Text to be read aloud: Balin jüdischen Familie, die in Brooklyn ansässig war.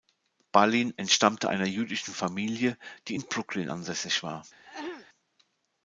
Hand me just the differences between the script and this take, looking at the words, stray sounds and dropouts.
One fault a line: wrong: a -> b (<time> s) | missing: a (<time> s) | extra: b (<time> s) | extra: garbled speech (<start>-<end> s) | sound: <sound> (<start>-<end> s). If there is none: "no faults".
extra: entstammte einer (0.9 s)
sound: throat clearing (4.6-5.1 s)